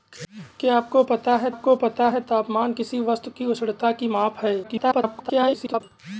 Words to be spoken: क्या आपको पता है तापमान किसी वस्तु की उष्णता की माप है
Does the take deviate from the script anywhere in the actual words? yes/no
yes